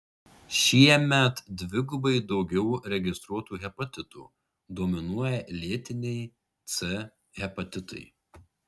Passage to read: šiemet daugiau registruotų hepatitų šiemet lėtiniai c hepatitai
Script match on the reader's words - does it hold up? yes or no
no